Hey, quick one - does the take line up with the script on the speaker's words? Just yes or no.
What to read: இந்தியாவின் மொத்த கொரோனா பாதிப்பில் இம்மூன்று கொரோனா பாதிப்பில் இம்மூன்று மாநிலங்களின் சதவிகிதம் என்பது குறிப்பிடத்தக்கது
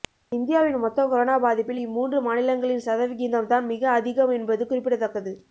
no